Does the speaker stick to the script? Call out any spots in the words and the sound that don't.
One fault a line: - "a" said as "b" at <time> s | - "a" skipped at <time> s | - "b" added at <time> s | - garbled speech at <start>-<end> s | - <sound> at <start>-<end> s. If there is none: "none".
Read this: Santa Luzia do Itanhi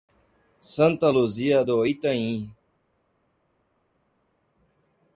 none